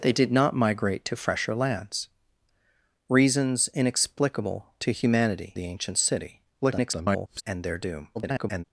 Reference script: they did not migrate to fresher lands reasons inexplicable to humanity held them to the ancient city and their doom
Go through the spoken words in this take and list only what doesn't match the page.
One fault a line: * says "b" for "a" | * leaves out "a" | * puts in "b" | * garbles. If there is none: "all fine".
* leaves out "held them to"
* garbles
* garbles